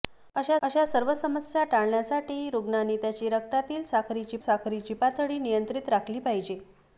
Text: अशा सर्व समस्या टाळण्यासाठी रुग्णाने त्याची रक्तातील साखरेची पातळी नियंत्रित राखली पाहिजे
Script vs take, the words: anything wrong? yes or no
yes